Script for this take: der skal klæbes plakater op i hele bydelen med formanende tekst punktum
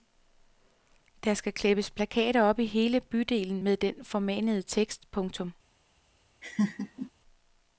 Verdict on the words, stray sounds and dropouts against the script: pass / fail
fail